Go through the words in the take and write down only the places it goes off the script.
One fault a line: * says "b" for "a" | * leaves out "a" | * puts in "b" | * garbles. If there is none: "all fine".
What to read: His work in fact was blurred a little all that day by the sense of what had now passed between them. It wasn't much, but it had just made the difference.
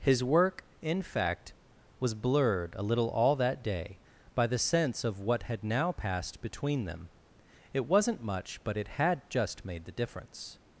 all fine